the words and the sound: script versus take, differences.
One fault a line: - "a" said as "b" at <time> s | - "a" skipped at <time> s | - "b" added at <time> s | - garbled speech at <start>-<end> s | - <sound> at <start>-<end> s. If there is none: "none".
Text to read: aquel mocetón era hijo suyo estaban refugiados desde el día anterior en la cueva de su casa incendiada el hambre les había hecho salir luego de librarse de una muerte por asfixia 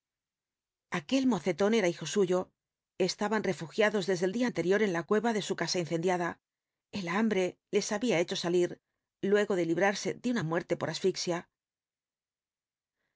none